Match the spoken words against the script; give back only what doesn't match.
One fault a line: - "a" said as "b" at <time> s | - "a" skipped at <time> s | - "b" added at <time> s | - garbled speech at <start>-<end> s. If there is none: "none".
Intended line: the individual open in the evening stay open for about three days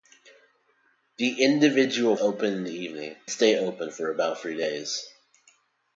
none